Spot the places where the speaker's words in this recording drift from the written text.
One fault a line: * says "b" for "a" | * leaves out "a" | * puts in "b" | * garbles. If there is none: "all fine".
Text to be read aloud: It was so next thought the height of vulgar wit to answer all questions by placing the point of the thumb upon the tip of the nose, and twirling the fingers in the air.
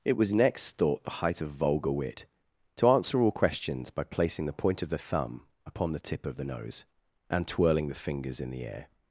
* leaves out "so"